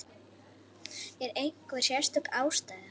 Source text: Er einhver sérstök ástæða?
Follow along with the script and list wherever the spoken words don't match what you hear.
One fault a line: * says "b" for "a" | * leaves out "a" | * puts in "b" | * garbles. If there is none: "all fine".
all fine